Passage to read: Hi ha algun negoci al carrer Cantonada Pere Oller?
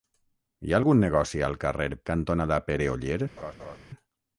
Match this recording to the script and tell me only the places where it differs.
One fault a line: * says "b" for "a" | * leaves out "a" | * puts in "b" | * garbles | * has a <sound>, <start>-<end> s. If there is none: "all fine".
* has a laugh, 3.4-3.8 s